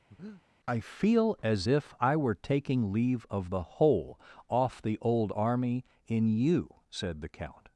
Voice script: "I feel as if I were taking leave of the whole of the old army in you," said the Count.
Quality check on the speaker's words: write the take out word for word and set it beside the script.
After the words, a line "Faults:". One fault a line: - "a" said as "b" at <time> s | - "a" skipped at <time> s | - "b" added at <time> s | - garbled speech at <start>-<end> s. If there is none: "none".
"I feel as if I were taking leave of the whole off the old army in you," said the Count.
Faults:
- "of" said as "off" at 4.5 s